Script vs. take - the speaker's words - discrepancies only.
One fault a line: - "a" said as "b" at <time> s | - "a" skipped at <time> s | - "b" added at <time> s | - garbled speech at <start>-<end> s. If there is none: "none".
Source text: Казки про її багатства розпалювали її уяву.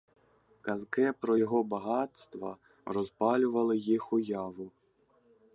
- "її" said as "його" at 1.3 s
- "її" said as "їх" at 3.8 s